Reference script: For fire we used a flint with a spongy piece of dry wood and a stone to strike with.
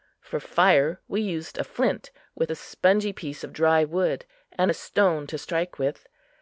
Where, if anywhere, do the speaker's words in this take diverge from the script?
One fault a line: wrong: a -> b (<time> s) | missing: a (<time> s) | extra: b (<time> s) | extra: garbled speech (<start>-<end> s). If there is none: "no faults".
no faults